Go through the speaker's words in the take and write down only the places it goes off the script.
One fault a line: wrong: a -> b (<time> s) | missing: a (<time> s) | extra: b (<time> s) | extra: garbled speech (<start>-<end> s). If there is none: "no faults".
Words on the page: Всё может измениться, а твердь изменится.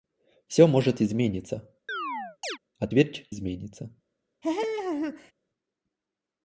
no faults